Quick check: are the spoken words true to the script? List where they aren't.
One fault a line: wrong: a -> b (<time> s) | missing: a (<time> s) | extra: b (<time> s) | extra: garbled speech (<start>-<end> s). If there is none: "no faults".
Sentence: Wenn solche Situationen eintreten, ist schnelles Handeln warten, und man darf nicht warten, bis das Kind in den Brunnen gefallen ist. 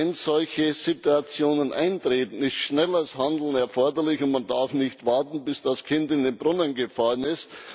wrong: warten -> erforderlich (3.5 s)